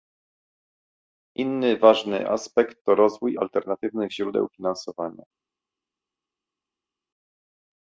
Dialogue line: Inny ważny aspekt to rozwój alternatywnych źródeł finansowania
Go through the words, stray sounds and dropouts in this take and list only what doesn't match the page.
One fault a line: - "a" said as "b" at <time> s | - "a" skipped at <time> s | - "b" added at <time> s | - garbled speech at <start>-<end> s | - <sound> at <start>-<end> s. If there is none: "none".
none